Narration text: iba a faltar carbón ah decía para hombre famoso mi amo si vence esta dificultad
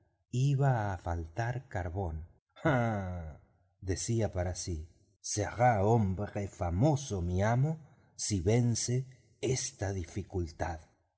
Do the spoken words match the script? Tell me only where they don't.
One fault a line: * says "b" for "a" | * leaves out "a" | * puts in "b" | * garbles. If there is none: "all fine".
* puts in "sí será"